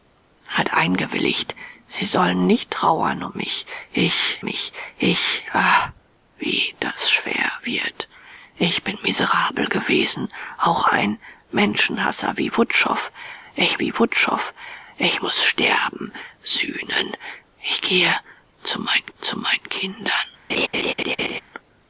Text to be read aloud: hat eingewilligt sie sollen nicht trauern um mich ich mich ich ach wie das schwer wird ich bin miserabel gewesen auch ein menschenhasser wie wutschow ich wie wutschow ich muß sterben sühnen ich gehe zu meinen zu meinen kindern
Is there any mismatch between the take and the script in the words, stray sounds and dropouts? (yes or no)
yes